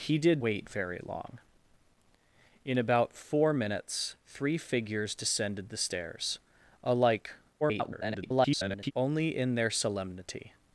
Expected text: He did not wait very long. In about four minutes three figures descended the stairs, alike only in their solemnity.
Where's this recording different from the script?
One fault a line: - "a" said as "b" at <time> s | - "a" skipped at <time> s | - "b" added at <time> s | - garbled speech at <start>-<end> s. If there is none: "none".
- "not" skipped at 0.4 s
- garbled speech at 7.6-8.9 s